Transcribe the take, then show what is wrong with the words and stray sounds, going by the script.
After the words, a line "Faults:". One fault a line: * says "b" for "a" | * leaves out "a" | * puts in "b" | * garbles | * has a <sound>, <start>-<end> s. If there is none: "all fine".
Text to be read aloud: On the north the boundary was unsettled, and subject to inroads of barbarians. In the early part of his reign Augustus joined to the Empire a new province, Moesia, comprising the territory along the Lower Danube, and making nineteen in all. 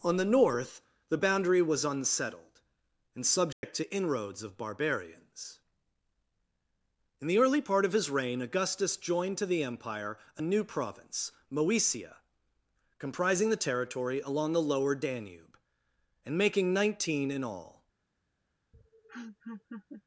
On the north the boundary was unsettled, and subject to inroads of barbarians. In the early part of his reign Augustus joined to the Empire a new province, Moesia, comprising the territory along the Lower Danube, and making nineteen in all.
Faults:
* has a dropout, 3.5-3.6 s
* has a laugh, 18.7-20.0 s